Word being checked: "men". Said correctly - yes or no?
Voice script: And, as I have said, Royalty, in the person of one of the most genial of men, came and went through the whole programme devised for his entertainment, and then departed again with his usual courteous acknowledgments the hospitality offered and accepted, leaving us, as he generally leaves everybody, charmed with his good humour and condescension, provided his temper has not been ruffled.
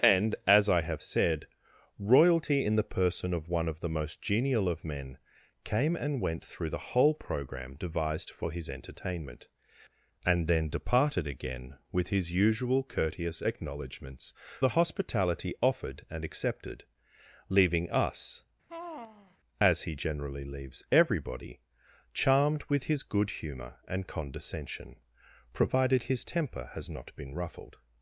yes